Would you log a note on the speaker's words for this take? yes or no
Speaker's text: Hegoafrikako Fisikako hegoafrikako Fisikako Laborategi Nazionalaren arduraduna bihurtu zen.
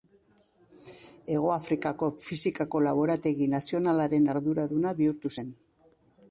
yes